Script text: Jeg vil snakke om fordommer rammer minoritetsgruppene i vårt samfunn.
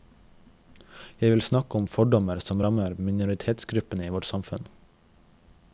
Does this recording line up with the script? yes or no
no